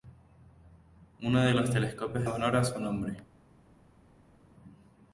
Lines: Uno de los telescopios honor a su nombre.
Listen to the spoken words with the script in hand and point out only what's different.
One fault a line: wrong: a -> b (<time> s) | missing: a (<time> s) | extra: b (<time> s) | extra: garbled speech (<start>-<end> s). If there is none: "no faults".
no faults